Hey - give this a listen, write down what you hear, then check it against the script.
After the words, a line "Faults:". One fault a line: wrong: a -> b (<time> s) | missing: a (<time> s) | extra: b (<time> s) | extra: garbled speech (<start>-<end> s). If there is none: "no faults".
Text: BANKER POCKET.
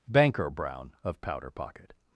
BANKER BROWN OF POWDER POCKET.
Faults:
extra: BROWN OF POWDER (0.5 s)